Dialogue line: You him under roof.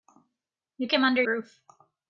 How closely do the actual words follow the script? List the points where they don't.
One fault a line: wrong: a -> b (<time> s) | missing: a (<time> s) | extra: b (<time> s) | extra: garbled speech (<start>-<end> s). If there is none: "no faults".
no faults